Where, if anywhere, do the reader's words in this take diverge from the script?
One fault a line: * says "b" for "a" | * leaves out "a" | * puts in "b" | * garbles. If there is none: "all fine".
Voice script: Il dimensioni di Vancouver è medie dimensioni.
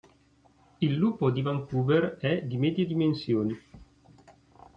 * says "lupo" for "dimensioni"
* puts in "di"